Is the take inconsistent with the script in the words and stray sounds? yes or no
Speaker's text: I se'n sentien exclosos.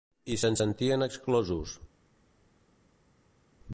no